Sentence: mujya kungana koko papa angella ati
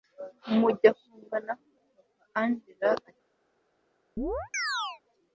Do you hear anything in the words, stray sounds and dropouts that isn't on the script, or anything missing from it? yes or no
yes